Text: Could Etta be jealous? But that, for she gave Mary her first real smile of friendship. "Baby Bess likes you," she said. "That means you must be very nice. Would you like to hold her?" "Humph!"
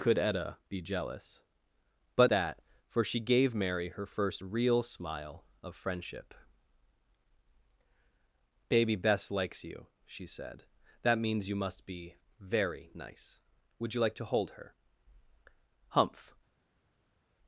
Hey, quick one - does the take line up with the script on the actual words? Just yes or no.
yes